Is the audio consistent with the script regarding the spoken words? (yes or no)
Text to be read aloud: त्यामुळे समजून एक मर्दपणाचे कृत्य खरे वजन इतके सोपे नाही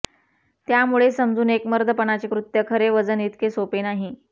yes